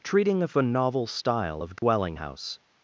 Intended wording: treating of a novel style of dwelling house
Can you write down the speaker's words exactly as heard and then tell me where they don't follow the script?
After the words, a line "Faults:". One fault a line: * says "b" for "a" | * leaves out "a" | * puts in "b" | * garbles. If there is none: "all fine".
treating of a novel style of dwelling house
Faults:
all fine